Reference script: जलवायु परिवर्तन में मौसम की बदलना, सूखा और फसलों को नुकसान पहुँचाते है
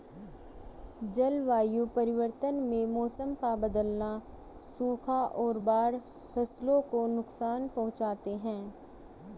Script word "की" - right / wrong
wrong